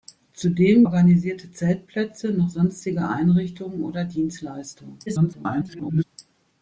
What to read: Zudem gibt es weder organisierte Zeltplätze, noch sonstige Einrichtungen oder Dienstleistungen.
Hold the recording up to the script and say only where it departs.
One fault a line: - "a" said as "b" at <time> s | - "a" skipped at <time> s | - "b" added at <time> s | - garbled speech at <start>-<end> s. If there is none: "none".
- "gibt es weder" skipped at 0.9 s
- garbled speech at 5.1-6.0 s